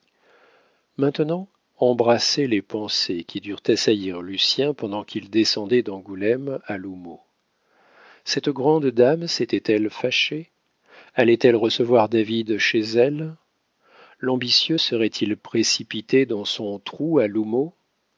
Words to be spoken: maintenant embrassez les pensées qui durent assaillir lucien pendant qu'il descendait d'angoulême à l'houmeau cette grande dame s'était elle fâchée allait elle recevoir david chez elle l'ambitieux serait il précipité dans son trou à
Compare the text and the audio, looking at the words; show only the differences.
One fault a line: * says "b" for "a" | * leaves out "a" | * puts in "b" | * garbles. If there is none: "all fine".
all fine